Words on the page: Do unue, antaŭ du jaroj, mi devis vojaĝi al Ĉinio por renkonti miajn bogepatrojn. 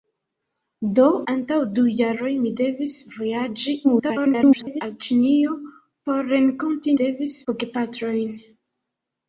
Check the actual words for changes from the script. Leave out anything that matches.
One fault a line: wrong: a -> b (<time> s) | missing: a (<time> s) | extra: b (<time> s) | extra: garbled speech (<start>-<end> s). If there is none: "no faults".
missing: unue (1.0 s)
extra: garbled speech (3.8-4.8 s)
wrong: miajn -> devis (7.0 s)